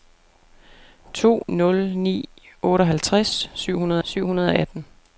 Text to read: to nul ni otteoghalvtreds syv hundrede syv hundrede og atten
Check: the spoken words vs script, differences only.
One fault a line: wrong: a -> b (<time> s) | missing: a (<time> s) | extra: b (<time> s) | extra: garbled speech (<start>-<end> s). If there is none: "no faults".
no faults